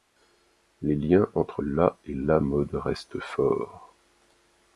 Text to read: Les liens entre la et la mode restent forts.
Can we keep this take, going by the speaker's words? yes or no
yes